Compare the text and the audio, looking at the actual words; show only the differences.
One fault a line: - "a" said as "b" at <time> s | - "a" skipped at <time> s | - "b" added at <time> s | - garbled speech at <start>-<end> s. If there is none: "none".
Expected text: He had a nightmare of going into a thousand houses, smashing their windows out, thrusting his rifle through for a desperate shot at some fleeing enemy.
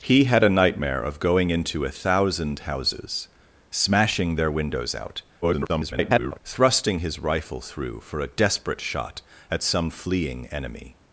- garbled speech at 5.4-6.4 s